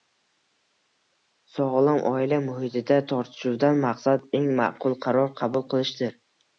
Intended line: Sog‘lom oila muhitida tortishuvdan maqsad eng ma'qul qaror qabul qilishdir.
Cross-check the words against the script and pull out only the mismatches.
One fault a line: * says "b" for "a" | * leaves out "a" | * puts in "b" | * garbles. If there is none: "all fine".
all fine